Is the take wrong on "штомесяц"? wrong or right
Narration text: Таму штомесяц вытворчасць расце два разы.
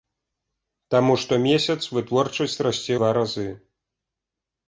right